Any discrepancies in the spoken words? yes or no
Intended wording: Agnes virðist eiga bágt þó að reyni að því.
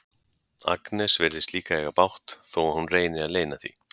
yes